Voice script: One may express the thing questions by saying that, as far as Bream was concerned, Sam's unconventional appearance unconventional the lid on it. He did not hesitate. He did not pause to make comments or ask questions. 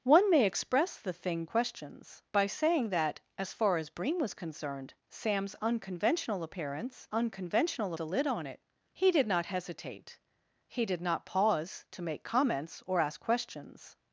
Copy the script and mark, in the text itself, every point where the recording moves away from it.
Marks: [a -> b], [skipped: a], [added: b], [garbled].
One may express the thing questions by saying that, as far as Bream was concerned, Sam's unconventional appearance unconventional the lid on it. He did not hesitate. He did not pause to make comments or ask questions.